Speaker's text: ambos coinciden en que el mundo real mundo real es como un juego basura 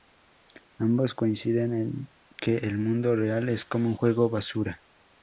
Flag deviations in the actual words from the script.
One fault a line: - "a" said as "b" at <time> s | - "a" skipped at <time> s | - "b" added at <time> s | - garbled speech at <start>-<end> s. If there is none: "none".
- "mundo real" skipped at 3.5 s